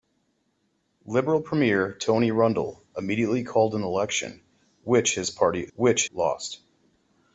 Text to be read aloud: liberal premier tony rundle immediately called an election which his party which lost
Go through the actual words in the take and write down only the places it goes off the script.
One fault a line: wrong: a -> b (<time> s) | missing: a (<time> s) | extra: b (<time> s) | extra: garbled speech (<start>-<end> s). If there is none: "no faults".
no faults